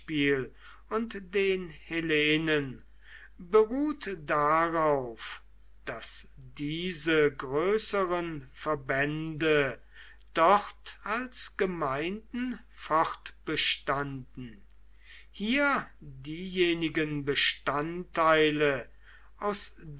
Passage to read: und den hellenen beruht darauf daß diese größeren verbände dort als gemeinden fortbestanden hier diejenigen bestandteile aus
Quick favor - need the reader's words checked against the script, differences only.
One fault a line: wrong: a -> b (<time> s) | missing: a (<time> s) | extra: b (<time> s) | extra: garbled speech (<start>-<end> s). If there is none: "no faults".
no faults